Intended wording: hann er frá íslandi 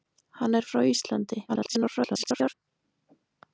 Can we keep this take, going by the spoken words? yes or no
no